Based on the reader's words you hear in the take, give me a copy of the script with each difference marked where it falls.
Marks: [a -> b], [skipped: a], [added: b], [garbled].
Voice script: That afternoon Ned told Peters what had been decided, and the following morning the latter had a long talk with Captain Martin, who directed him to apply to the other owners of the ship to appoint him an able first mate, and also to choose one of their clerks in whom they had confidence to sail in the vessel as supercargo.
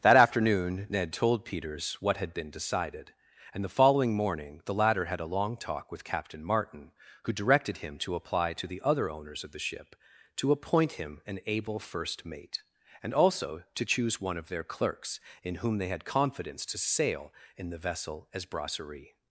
That afternoon Ned told Peters what had been decided, and the following morning the latter had a long talk with Captain Martin, who directed him to apply to the other owners of the ship to appoint him an able first mate, and also to choose one of their clerks in whom they had confidence to sail in the vessel as [supercargo. -> brasserie]